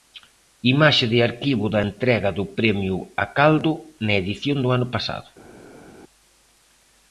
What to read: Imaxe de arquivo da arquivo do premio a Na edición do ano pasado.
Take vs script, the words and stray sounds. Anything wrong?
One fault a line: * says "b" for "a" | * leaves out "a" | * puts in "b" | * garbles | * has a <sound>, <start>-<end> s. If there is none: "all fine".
* says "entrega" for "arquivo"
* puts in "Caldo"